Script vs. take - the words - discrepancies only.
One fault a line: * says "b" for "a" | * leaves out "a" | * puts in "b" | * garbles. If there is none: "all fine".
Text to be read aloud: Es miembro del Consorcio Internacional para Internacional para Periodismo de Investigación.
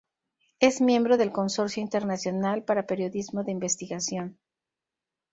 * leaves out "Internacional para"